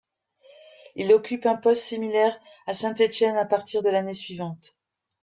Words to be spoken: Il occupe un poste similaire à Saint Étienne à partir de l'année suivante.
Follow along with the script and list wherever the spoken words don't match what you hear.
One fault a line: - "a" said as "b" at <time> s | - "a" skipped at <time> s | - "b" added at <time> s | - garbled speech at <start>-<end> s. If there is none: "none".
none